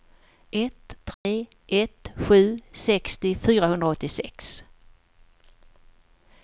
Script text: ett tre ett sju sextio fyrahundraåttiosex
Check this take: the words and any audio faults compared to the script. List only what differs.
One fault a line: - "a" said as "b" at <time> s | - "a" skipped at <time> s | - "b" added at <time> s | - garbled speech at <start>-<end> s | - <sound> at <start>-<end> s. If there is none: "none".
- dropout at 1.1-1.3 s